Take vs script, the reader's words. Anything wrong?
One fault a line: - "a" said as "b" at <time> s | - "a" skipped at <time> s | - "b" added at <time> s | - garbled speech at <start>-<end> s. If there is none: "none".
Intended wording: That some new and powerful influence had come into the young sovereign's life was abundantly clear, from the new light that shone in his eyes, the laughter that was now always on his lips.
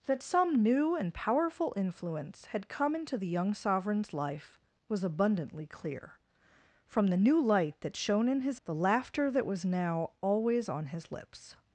- "eyes" skipped at 8.6 s